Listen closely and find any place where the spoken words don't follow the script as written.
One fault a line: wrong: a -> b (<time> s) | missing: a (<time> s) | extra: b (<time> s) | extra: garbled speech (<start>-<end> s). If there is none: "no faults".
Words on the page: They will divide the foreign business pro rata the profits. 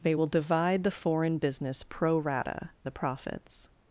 no faults